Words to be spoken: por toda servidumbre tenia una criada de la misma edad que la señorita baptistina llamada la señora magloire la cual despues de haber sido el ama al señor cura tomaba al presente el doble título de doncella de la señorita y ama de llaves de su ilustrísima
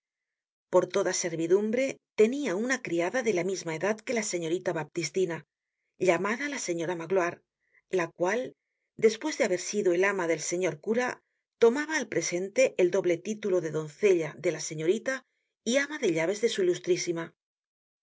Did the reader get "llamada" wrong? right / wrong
right